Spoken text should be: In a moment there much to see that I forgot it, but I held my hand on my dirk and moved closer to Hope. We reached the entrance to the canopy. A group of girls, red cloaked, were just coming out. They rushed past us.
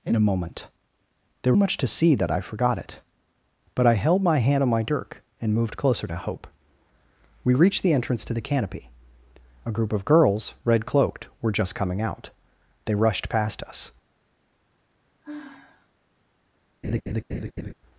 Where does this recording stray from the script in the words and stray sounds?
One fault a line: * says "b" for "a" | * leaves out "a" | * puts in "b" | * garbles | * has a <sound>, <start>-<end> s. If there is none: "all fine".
* has a sigh, 15.2-15.9 s
* has a laugh, 16.8-17.7 s